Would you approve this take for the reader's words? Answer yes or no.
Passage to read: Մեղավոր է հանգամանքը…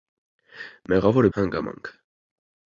yes